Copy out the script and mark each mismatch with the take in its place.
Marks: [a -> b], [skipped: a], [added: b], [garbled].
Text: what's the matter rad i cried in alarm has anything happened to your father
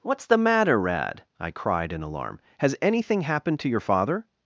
what's the matter rad i cried in alarm has anything happened to your father